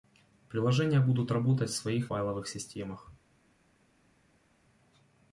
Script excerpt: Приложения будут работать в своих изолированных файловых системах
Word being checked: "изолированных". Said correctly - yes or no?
no